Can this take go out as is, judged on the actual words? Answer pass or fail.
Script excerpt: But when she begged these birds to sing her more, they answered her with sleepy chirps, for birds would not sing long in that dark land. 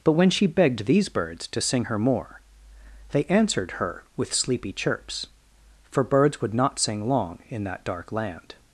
pass